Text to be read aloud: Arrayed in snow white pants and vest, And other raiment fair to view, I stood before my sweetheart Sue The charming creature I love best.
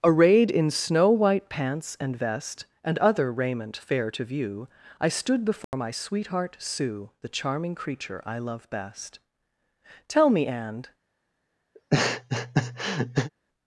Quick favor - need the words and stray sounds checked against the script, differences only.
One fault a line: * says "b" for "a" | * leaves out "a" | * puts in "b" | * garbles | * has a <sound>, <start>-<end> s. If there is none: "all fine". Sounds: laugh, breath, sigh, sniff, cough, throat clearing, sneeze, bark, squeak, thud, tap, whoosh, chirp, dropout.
* has a dropout, 5.6-5.7 s
* puts in "Tell me and"
* has a laugh, 11.7-13.3 s